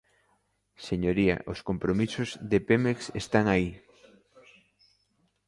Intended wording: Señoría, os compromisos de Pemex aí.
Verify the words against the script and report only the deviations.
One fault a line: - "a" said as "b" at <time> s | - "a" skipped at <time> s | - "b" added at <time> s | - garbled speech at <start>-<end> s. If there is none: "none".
- "están" added at 3.2 s